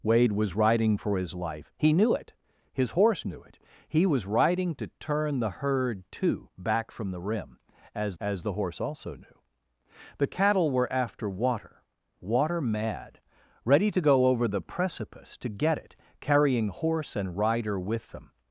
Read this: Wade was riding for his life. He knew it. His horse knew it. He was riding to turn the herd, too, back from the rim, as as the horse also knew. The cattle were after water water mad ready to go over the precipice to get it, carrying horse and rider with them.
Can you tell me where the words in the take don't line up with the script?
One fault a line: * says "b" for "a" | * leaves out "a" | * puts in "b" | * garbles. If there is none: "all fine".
all fine